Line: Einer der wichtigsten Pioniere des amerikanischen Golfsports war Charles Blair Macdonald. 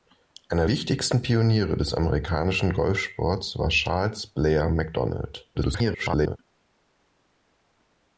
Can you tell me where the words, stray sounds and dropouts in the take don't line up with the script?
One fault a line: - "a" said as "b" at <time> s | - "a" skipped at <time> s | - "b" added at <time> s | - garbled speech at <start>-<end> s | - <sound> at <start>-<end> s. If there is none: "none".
- "der" skipped at 0.7 s
- garbled speech at 5.5-6.4 s